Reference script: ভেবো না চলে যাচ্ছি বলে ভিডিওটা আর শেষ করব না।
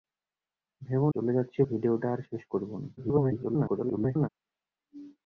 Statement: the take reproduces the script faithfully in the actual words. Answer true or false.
false